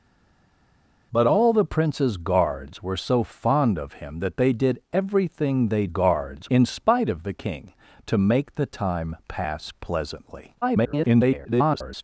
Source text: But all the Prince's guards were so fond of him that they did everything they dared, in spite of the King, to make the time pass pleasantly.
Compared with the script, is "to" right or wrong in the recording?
right